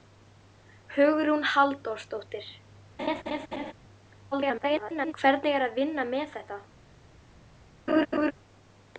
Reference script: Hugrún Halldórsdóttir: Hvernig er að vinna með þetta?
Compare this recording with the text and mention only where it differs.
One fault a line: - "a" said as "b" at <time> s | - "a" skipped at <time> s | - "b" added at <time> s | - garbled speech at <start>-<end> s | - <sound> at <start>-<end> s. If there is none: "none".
- laugh at 3.0-3.7 s
- garbled speech at 4.3-5.1 s
- laugh at 7.9-8.3 s